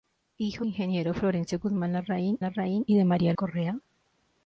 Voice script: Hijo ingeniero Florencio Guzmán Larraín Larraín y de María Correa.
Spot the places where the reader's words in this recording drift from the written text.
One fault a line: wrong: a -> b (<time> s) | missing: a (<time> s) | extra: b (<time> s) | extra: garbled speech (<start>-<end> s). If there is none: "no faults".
no faults